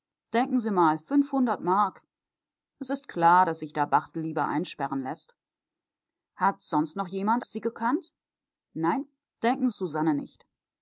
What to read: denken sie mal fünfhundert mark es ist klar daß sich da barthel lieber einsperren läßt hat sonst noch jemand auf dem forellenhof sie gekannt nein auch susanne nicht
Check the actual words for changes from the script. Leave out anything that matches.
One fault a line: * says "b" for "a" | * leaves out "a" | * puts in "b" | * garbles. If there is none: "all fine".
* leaves out "auf dem forellenhof"
* says "denken" for "auch"